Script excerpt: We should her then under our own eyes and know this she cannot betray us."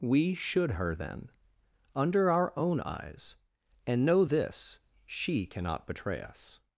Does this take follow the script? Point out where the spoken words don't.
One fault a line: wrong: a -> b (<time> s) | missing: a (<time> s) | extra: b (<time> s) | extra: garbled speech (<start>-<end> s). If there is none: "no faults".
no faults